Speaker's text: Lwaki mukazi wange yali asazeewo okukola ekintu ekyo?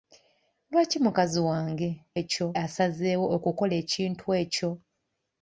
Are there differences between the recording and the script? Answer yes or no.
yes